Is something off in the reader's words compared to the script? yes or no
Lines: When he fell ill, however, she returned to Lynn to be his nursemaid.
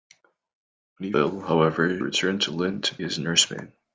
yes